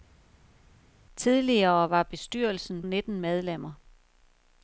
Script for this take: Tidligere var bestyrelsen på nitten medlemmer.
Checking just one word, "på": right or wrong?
wrong